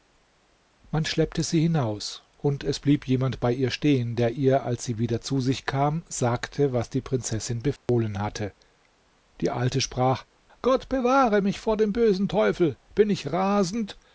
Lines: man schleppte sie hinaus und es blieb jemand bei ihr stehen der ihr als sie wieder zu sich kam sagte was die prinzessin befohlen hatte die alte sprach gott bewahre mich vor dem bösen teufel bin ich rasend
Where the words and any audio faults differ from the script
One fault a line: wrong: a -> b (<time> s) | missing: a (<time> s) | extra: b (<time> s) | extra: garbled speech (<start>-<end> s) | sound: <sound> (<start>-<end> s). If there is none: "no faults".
sound: dropout (7.8-7.9 s)